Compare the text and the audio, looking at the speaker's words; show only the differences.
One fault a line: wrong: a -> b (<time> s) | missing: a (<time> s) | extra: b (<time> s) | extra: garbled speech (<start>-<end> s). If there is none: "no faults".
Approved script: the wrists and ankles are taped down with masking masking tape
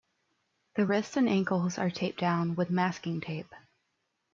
missing: masking (3.2 s)